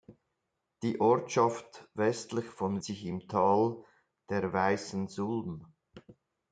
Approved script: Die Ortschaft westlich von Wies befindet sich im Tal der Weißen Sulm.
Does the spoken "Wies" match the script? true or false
false